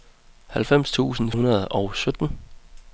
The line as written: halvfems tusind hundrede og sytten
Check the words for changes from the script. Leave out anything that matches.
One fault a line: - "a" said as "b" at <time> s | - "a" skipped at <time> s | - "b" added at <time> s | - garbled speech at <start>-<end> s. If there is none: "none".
none